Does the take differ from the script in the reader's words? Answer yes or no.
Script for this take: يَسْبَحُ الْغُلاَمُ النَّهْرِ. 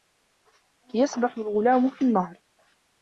yes